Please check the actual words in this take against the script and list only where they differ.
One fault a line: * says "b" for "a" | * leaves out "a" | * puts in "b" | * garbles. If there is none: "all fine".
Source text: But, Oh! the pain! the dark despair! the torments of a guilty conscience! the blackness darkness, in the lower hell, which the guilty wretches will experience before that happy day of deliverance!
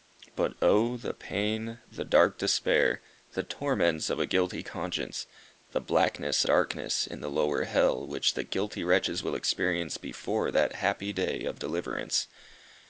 all fine